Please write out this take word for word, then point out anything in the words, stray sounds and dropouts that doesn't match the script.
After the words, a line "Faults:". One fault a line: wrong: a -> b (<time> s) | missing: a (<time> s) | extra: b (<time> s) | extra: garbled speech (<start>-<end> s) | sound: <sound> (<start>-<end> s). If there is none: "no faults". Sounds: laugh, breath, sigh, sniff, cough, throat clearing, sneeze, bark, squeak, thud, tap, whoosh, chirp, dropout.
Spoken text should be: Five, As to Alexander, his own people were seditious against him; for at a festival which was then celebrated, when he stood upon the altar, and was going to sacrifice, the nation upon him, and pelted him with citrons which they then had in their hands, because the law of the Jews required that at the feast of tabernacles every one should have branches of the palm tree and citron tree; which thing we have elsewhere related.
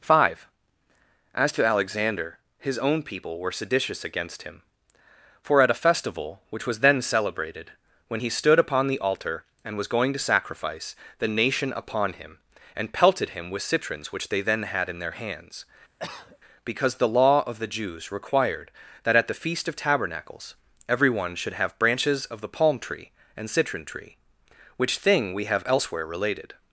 Five, As to Alexander, his own people were seditious against him; for at a festival which was then celebrated, when he stood upon the altar, and was going to sacrifice, the nation upon him, and pelted him with citrons which they then had in their hands, because the law of the Jews required that at the feast of tabernacles every one should have branches of the palm tree and citron tree; which thing we have elsewhere related.
Faults:
sound: cough (16.0-16.4 s)